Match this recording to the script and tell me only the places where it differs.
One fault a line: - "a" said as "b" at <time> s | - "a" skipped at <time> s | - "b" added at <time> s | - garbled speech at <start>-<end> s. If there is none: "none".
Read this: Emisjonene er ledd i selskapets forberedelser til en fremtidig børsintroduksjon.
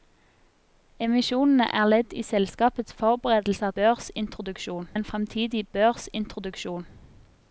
- "til" said as "børsintroduksjon" at 3.7 s